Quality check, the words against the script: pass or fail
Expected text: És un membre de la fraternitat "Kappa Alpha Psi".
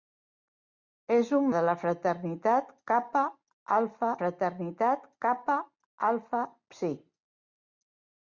fail